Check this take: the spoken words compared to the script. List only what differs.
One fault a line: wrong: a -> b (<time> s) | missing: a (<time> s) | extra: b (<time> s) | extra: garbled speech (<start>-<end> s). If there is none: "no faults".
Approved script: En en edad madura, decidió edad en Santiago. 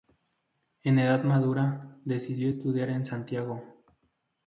missing: en (1.0 s)
wrong: edad -> estudiar (2.5 s)